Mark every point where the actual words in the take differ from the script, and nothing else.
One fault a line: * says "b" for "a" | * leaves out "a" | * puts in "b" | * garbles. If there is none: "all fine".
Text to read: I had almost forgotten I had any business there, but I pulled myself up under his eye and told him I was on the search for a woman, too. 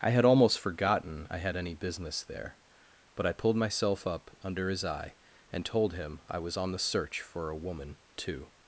all fine